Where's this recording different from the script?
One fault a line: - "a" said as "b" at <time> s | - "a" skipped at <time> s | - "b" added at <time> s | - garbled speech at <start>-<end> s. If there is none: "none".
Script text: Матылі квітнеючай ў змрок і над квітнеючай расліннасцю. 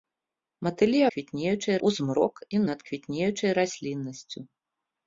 none